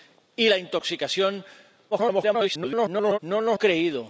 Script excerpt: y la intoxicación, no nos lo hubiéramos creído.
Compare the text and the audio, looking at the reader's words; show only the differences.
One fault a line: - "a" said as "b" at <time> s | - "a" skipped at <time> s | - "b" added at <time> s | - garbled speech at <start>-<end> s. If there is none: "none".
- garbled speech at 1.9-3.2 s
- "lo hubiéramos" skipped at 3.6 s